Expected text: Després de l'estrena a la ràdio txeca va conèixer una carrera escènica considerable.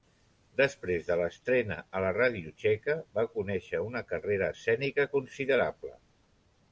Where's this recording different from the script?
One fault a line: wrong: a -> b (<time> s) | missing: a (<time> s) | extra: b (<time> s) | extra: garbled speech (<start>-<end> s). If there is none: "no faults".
no faults